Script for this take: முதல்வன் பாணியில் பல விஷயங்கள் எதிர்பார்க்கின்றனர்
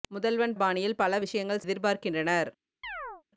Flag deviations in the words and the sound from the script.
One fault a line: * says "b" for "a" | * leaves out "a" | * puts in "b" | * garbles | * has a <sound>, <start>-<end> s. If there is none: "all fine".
* has a chirp, 2.8-3.2 s